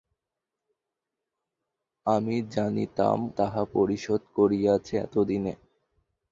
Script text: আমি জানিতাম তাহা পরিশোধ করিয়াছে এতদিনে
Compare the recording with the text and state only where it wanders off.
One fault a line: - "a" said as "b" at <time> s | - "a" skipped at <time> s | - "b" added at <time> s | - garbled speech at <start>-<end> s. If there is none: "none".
none